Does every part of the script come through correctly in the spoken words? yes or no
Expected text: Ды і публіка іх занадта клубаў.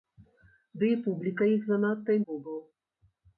yes